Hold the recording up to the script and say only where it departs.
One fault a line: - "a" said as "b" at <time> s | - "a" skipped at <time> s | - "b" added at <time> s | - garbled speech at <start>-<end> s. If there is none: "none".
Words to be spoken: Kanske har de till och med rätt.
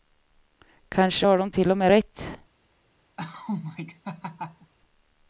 none